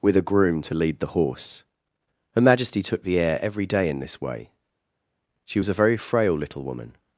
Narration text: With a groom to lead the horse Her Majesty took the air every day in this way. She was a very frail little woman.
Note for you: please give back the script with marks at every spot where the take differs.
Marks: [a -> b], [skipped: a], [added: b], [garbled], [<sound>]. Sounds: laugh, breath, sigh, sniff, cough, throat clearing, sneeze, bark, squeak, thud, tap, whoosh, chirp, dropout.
With a groom to lead the horse Her Majesty took the air every day in this way. She was a very frail little woman.